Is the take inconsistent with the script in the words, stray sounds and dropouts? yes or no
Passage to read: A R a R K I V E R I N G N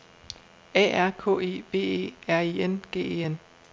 yes